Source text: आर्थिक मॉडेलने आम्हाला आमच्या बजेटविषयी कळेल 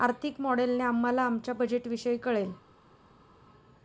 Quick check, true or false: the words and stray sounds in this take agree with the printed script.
true